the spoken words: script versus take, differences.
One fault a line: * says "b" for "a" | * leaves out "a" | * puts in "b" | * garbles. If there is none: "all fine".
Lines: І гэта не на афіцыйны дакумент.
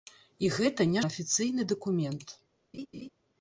all fine